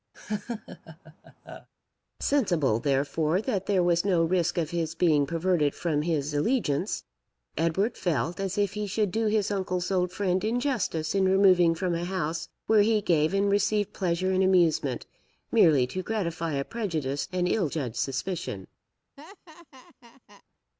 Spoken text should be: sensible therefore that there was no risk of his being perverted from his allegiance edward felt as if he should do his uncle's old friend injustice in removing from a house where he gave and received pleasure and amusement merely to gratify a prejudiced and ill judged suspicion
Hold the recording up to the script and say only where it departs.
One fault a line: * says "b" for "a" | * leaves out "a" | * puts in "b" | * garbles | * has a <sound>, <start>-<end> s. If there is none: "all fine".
* has a laugh, 0.1-1.7 s
* has a laugh, 19.2-20.4 s